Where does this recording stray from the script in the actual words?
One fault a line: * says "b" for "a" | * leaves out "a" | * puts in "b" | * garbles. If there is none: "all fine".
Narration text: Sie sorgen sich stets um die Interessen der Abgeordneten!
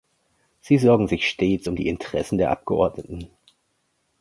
all fine